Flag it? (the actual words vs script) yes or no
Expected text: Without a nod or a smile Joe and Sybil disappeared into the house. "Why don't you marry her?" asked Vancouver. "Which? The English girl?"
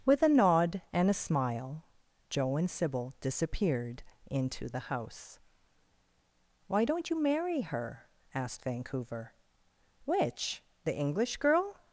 yes